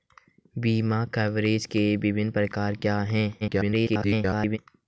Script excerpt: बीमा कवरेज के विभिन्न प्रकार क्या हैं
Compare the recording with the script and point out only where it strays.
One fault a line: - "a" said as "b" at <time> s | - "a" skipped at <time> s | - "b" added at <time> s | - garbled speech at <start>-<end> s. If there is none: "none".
- garbled speech at 3.4-4.6 s